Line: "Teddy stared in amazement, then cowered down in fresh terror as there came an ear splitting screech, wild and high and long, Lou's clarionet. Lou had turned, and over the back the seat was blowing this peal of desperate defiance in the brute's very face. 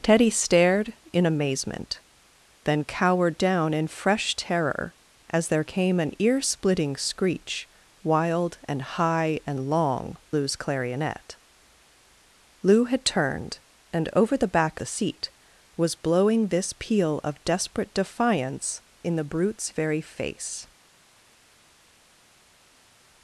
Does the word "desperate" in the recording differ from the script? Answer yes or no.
no